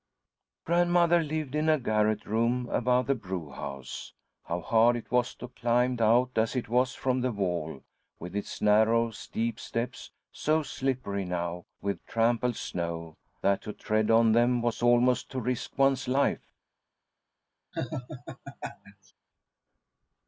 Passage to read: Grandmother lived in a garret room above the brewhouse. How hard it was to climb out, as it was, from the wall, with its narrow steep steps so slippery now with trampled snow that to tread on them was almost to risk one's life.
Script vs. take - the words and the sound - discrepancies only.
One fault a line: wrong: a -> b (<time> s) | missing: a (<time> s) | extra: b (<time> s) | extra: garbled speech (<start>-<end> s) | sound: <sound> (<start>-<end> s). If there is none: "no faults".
sound: laugh (17.7-19.1 s)